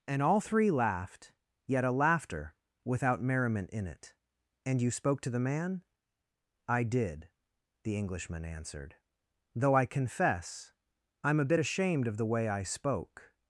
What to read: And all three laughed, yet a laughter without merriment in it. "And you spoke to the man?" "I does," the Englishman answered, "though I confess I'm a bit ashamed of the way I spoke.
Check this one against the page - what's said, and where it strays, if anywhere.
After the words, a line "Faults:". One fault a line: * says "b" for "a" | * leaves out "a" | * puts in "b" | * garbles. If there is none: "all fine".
And all three laughed, yet a laughter without merriment in it. "And you spoke to the man?" "I did," the Englishman answered, "though I confess I'm a bit ashamed of the way I spoke.
Faults:
* says "did" for "does"